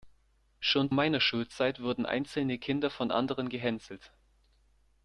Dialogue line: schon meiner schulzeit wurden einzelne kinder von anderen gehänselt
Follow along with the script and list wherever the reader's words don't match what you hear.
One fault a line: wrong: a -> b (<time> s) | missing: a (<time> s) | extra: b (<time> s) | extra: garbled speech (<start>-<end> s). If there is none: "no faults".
no faults